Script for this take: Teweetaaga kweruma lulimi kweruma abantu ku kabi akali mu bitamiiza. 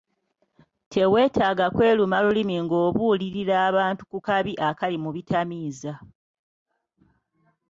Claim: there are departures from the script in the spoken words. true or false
true